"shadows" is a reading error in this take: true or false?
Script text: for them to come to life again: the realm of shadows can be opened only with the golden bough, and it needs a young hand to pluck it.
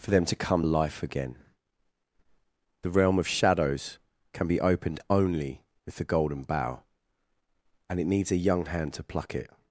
false